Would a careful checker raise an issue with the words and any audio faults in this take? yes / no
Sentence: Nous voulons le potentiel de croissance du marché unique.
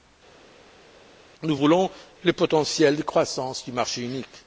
no